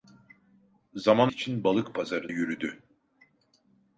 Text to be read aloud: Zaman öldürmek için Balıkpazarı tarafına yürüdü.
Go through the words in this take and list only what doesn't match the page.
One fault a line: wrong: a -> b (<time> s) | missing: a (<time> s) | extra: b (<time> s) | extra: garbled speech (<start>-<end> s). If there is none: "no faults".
missing: öldürmek (1.3 s)
missing: tarafına (2.3 s)